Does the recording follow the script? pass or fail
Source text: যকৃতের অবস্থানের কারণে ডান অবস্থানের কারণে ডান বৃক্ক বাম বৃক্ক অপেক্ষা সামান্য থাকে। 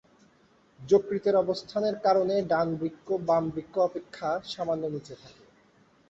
fail